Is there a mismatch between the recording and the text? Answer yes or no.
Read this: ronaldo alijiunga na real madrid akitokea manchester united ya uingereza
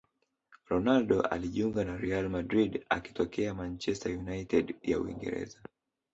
no